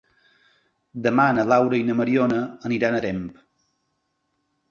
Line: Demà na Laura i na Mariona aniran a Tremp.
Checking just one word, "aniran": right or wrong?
right